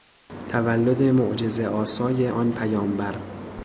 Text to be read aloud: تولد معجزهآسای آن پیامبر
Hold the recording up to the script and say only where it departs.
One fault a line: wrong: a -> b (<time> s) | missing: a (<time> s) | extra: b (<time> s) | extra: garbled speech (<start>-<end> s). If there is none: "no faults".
no faults